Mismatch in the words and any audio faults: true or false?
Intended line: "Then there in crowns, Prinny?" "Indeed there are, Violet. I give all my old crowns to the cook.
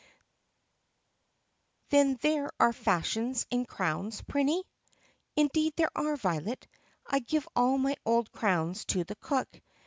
true